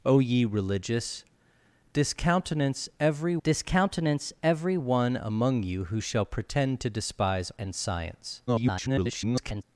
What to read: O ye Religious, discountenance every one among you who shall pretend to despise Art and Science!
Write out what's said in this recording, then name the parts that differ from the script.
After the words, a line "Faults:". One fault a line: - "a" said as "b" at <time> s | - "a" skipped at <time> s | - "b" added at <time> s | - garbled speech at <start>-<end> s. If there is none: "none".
O ye Religious, discountenance every discountenance every one among you who shall pretend to despise And Science! [garbled]
Faults:
- "discountenance every" added at 3.4 s
- "Art" skipped at 7.5 s
- garbled speech at 8.5-9.6 s